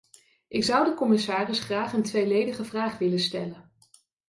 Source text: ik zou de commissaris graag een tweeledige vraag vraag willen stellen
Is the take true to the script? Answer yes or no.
no